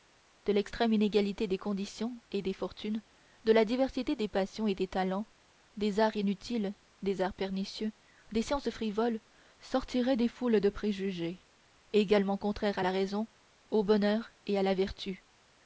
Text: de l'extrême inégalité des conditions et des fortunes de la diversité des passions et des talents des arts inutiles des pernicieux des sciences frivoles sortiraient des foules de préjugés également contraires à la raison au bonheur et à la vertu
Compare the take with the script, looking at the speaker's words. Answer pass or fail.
fail